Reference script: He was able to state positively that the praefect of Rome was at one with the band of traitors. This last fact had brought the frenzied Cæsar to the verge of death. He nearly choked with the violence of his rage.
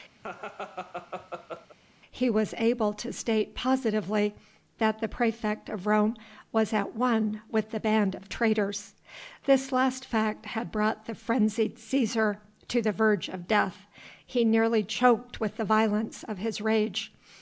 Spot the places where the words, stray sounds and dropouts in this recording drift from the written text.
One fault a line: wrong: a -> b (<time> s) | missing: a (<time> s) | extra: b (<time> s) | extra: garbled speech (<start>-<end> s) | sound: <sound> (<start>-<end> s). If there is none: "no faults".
sound: laugh (0.2-1.8 s)